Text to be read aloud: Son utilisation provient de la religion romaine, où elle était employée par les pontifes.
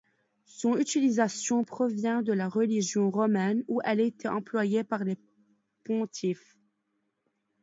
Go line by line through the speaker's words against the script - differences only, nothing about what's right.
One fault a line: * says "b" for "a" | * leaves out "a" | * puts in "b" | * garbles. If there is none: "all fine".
all fine